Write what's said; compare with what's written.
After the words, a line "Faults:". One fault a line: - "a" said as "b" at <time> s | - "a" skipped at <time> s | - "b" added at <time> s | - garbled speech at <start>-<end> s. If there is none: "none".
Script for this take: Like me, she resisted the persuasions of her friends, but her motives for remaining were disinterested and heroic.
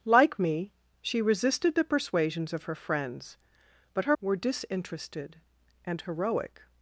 Like me, she resisted the persuasions of her friends, but her were disinterested and heroic.
Faults:
- "motives for remaining" skipped at 4.2 s